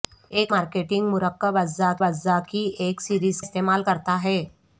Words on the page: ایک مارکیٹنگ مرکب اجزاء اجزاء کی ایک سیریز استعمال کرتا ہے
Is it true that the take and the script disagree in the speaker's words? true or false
false